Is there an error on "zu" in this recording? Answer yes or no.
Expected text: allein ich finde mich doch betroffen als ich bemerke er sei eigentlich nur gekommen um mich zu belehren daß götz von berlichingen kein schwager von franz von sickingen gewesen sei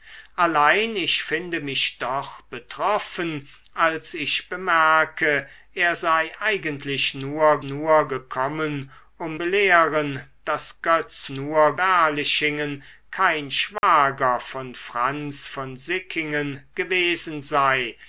yes